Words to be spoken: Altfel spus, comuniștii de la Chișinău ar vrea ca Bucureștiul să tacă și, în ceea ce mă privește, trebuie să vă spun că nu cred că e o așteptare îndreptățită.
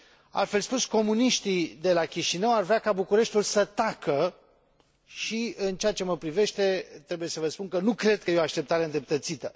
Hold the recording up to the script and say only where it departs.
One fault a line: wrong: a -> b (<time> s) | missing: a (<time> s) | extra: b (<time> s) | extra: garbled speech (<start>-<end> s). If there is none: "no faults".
no faults